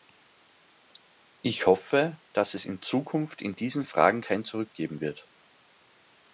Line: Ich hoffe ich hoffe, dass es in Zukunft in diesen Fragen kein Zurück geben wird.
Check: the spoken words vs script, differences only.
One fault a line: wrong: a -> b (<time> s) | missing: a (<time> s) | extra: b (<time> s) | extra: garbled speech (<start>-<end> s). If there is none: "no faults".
missing: ich hoffe (2.2 s)